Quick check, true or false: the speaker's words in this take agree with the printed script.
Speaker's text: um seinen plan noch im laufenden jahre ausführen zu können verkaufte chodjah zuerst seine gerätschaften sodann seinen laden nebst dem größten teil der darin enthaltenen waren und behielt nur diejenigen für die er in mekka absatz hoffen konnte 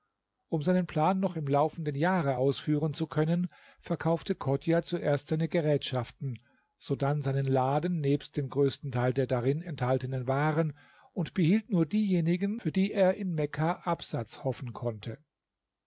true